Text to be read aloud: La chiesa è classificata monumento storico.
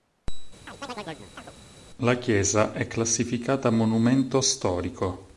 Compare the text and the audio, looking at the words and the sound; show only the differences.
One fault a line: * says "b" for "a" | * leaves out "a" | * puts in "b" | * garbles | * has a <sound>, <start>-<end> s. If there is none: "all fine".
* has a chirp, 0.7-1.5 s